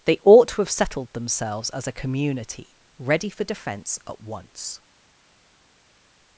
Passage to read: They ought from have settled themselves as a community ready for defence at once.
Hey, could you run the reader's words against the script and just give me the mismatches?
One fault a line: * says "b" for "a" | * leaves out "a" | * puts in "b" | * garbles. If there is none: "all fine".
* says "to" for "from"